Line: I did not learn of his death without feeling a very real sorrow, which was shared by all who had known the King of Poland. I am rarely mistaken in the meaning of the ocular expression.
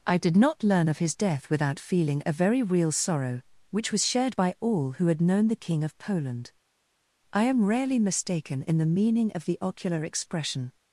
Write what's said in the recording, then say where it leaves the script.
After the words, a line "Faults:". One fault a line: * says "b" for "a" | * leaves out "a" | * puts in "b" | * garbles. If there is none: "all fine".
I did not learn of his death without feeling a very real sorrow, which was shared by all who had known the King of Poland. I am rarely mistaken in the meaning of the ocular expression.
Faults:
all fine